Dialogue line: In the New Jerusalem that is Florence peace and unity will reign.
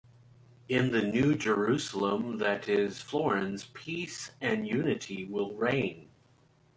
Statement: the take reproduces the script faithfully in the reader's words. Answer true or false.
true